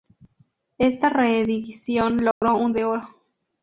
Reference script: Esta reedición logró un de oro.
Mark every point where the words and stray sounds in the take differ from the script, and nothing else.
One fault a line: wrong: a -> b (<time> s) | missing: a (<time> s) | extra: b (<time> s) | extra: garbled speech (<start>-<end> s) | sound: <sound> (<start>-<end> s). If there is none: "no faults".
sound: dropout (2.3-2.4 s)